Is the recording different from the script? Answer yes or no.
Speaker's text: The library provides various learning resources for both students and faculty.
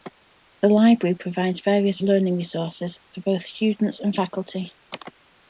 no